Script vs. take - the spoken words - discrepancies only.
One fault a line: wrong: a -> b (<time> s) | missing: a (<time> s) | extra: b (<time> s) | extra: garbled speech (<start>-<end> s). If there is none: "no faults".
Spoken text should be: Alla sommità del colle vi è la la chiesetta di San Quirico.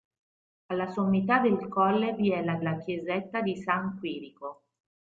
no faults